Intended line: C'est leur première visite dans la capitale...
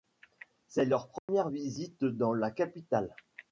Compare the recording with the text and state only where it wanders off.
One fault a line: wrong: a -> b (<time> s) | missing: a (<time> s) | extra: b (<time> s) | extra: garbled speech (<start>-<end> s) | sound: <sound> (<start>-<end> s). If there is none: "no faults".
sound: dropout (1.2-1.3 s)